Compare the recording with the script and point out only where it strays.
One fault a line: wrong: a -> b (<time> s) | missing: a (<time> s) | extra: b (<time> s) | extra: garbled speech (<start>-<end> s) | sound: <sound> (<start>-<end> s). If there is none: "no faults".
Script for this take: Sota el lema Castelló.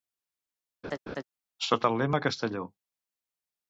sound: laugh (0.8-1.2 s)